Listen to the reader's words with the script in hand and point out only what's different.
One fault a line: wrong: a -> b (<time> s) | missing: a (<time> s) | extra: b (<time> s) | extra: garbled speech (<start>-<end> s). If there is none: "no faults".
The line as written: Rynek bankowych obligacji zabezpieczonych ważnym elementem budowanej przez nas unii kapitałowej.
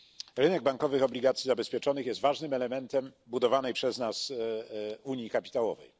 extra: jest (2.1 s)